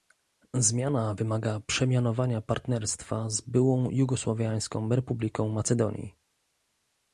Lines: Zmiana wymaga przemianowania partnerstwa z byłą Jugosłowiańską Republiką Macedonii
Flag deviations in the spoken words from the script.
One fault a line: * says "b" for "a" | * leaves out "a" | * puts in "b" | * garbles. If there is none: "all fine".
all fine